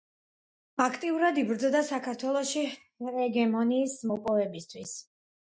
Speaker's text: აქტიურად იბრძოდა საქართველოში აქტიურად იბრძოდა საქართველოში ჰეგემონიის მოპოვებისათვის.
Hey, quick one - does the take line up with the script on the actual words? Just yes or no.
no